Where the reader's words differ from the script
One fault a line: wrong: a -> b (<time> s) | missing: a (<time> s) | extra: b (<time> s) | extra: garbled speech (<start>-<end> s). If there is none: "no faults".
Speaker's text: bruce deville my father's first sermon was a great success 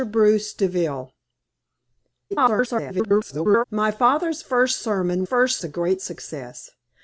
extra: garbled speech (2.3-3.7 s)
wrong: was -> first (5.2 s)